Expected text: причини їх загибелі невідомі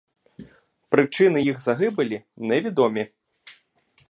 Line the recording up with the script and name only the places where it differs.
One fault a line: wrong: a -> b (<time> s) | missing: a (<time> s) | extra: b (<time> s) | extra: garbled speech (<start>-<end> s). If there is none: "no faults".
no faults